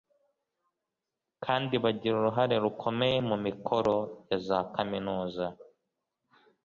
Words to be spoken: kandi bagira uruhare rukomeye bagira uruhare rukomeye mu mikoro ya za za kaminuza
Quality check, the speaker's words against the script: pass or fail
fail